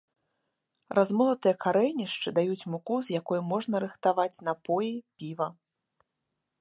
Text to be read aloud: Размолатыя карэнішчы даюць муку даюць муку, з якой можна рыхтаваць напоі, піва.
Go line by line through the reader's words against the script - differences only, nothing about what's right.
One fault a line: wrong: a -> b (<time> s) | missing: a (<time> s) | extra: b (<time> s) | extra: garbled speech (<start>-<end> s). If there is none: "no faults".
missing: даюць муку (3.0 s)